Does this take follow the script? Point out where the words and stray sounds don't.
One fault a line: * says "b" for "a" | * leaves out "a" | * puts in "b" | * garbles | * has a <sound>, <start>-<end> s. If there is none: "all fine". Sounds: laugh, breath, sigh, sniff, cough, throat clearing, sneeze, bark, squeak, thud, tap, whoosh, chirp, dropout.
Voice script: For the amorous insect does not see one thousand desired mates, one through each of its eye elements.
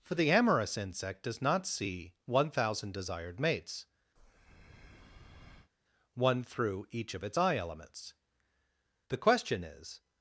* has a breath, 4.2-5.7 s
* puts in "The question is"